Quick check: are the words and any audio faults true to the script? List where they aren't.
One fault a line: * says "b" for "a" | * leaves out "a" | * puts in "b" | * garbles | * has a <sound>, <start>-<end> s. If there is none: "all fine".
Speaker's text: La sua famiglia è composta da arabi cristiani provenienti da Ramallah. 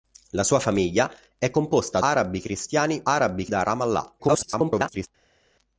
* leaves out "da"
* says "arabi" for "provenienti"
* garbles